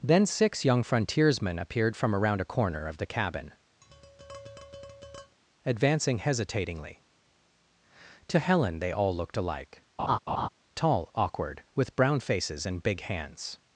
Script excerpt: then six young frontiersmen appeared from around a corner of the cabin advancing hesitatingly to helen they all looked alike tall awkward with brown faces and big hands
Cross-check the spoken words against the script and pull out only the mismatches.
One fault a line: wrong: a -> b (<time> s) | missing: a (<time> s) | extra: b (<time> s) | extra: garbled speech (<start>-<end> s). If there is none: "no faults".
no faults